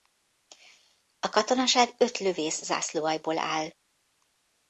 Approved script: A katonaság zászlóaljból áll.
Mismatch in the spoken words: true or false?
true